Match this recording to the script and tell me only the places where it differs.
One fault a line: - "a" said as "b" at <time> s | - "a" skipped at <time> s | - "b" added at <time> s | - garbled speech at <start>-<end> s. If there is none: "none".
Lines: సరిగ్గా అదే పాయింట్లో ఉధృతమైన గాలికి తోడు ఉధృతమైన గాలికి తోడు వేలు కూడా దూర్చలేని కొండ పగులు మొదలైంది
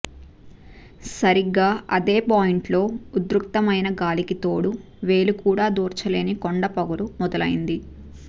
- "ఉధృతమైన గాలికి తోడు" skipped at 4.7 s